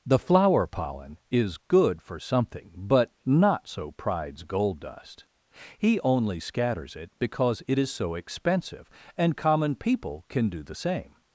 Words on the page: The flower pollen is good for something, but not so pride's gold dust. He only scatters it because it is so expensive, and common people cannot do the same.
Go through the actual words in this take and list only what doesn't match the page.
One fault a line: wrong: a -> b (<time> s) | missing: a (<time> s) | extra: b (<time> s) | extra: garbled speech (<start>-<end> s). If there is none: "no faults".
wrong: cannot -> can (10.3 s)